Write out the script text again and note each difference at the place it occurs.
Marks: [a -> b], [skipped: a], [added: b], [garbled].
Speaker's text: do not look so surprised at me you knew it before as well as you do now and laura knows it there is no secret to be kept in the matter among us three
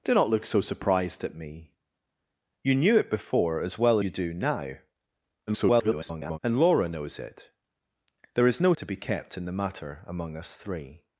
do not look so surprised at me you knew it before as well [skipped: as] you do now [garbled] and laura knows it there is no [skipped: secret] to be kept in the matter among us three